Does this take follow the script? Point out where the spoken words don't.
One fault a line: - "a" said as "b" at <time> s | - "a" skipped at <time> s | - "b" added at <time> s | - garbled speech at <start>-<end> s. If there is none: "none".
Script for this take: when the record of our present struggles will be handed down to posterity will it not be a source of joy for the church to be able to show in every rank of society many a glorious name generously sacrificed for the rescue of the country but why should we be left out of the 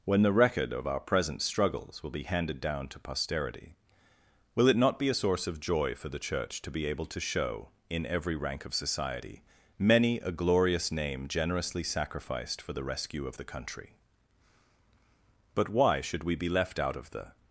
none